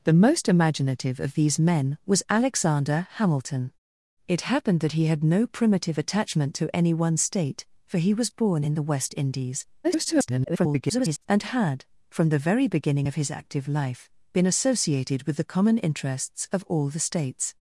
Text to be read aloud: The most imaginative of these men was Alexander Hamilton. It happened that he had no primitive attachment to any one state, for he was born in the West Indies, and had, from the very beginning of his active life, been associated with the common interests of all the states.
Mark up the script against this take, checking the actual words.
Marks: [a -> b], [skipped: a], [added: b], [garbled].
The most imaginative of these men was Alexander Hamilton. It happened that he had no primitive attachment to any one state, for he was born in the West Indies, [garbled] and had, from the very beginning of his active life, been associated with the common interests of all the states.